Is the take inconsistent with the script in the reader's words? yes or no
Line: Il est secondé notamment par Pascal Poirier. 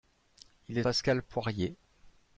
yes